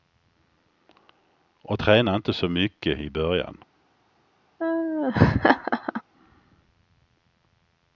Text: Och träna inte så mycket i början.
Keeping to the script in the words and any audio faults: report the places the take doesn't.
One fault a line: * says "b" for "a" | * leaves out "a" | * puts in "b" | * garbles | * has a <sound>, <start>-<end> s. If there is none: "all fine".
* has a laugh, 4.6-6.0 s